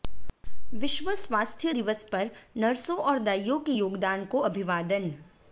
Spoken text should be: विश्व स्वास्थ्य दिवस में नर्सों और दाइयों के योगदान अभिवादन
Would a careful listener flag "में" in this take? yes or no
yes